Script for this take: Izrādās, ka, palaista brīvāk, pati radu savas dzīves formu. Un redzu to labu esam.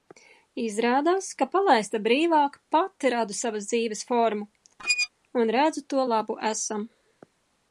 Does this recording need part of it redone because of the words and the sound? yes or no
yes